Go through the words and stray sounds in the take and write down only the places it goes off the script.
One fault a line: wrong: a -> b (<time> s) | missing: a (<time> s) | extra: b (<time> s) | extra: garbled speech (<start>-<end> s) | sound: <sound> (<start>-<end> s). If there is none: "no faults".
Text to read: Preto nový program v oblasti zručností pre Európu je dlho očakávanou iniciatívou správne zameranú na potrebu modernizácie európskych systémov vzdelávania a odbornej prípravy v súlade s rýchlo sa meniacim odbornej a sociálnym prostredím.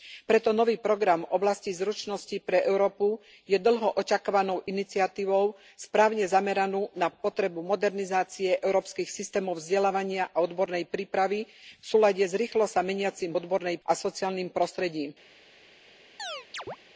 sound: chirp (16.2-16.8 s)